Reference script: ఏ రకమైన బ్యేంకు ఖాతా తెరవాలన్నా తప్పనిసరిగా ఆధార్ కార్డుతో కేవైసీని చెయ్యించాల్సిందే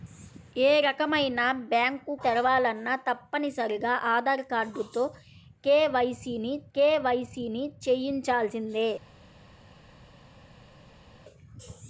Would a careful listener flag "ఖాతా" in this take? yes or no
yes